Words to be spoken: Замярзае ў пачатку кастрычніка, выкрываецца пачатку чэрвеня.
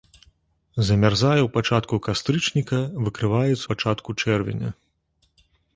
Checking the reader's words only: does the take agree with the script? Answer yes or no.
yes